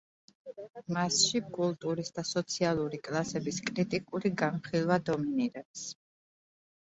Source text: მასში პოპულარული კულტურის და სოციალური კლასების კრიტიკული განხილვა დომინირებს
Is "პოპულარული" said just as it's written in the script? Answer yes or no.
no